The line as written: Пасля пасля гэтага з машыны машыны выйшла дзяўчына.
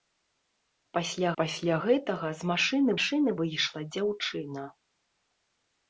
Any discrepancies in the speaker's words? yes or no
no